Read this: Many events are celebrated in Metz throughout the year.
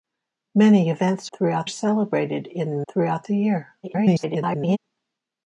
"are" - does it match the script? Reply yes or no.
no